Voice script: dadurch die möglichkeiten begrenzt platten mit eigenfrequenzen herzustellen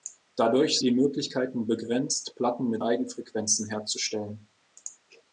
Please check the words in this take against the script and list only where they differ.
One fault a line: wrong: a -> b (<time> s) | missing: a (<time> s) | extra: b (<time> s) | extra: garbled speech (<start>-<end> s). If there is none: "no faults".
no faults